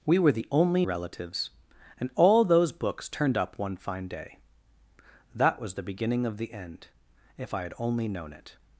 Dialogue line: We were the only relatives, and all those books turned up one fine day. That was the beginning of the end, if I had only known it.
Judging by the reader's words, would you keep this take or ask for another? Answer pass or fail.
pass